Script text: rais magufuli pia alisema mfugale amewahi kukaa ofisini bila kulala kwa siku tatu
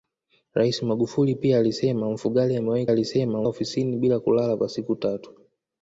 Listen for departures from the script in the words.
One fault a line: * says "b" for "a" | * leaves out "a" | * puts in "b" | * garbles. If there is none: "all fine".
* says "alisema" for "kukaa"